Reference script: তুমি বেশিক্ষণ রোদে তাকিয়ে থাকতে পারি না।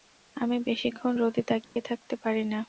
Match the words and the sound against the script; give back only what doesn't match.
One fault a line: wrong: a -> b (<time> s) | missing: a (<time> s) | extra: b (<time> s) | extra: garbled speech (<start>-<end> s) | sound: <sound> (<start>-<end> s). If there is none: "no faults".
wrong: তুমি -> আমি (0.3 s)
sound: dropout (1.6-1.8 s)